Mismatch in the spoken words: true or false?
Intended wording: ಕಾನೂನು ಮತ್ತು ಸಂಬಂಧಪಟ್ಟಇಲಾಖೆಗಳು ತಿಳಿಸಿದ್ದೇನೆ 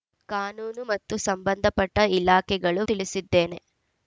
false